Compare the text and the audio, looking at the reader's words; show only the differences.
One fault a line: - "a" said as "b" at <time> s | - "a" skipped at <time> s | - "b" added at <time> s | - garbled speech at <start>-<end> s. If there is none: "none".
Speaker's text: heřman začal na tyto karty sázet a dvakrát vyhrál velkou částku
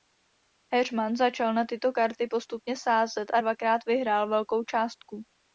- "postupně" added at 2.3 s